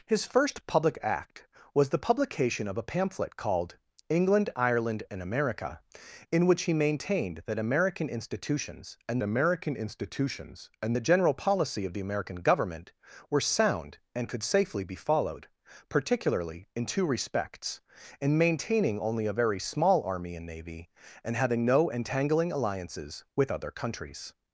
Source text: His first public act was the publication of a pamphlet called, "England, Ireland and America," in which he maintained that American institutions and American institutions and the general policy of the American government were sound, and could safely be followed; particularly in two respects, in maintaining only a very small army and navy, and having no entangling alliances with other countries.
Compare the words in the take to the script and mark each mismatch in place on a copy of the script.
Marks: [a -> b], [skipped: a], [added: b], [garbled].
His first public act was the publication of a pamphlet called, "England, Ireland and America," in which he maintained that American institutions and American institutions and the general policy of the American government were sound, and could safely be followed; particularly in two respects, in maintaining only a very small army and navy, and having no entangling alliances with other countries.